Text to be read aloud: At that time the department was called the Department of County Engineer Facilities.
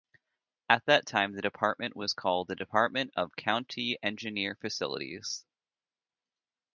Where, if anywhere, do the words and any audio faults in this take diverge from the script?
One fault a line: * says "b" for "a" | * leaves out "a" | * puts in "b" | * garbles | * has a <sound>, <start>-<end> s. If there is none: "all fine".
all fine